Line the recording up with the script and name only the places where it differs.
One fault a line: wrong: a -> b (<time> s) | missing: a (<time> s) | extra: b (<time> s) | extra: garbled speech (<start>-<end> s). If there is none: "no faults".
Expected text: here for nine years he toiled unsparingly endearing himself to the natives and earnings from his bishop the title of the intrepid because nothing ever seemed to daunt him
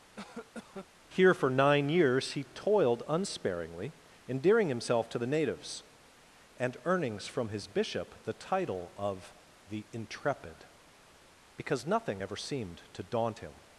no faults